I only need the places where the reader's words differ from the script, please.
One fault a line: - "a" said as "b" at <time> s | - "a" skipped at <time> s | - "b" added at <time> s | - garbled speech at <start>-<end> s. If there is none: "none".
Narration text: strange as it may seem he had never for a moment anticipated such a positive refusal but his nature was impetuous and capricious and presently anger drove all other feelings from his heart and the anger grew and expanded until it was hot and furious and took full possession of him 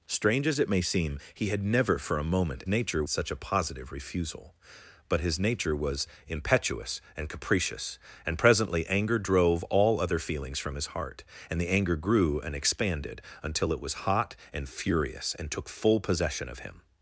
- "anticipated" said as "nature" at 2.7 s